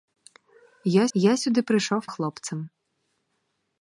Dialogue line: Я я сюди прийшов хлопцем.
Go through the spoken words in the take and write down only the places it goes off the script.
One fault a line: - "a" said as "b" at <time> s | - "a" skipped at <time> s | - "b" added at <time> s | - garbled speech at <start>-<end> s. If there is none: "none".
none